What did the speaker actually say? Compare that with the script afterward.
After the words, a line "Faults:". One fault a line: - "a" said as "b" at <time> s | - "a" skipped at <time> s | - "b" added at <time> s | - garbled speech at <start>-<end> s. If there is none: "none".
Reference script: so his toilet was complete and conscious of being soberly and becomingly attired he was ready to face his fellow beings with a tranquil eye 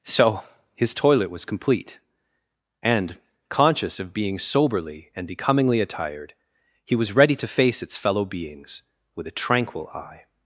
so his toilet was complete and conscious of being soberly and becomingly attired he was ready to face its fellow beings with a tranquil eye
Faults:
- "his" said as "its" at 7.8 s